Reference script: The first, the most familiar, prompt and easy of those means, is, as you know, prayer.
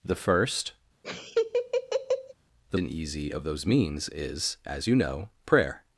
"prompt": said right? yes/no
no